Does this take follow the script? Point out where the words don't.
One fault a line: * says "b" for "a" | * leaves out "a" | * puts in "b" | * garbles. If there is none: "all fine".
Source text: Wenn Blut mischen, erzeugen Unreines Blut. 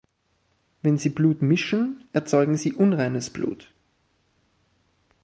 * puts in "Sie"
* puts in "Sie"